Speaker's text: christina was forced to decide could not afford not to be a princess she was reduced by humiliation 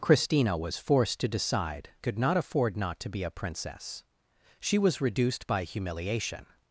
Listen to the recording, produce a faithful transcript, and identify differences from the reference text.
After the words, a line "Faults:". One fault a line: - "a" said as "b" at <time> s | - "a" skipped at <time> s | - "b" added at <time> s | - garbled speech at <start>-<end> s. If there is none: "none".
christina was forced to decide could not afford not to be a princess she was reduced by humiliation
Faults:
none